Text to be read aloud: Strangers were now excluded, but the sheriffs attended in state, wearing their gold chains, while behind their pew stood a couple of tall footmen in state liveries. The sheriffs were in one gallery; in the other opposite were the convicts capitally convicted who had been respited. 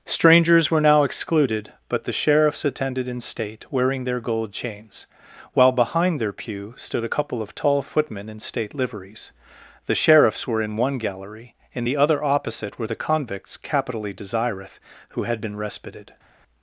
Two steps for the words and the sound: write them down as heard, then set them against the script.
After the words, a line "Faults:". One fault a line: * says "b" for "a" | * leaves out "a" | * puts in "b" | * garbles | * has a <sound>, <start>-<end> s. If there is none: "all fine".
Strangers were now excluded, but the sheriffs attended in state, wearing their gold chains, while behind their pew stood a couple of tall footmen in state liveries. The sheriffs were in one gallery; in the other opposite were the convicts capitally desireth who had been respited.
Faults:
* says "desireth" for "convicted"